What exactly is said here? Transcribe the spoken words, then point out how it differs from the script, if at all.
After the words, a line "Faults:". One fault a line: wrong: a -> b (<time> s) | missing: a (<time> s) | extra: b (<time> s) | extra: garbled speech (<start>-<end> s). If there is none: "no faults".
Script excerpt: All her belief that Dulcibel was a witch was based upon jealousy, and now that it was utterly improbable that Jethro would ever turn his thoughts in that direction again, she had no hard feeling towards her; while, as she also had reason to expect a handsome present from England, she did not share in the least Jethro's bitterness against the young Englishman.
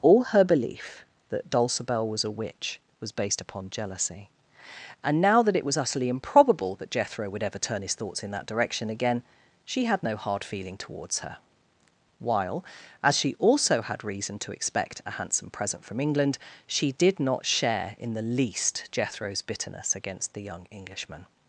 All her belief that Dulcibel was a witch was based upon jealousy, and now that it was utterly improbable that Jethro would ever turn his thoughts in that direction again, she had no hard feeling towards her; while, as she also had reason to expect a handsome present from England, she did not share in the least Jethro's bitterness against the young Englishman.
Faults:
no faults